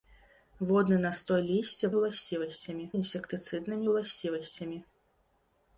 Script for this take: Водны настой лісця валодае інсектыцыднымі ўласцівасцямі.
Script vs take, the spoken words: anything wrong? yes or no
yes